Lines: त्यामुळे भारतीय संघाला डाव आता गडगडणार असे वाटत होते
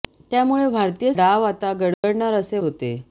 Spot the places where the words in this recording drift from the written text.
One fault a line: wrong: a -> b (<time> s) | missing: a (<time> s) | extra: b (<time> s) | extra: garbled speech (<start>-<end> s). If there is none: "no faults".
missing: संघाला (1.1 s)
missing: वाटत (2.6 s)